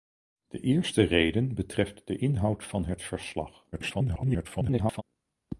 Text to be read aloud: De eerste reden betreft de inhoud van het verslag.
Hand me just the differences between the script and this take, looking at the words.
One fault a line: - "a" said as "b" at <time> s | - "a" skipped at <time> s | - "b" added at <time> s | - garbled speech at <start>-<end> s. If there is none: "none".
- garbled speech at 3.7-5.0 s